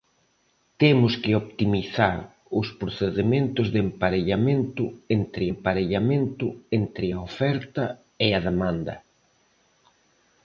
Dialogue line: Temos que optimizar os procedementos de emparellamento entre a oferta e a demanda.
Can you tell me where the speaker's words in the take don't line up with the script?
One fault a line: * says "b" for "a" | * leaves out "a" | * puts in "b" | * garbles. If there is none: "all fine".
* puts in "emparellamento entre"